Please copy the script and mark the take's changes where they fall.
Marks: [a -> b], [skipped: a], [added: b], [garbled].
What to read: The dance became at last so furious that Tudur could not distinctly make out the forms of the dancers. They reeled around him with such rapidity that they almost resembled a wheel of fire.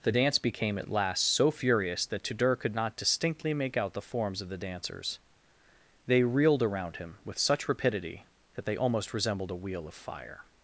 The dance became at last so furious that Tudur could not distinctly make out the forms of the dancers. They reeled around him with such rapidity that they almost resembled a wheel of fire.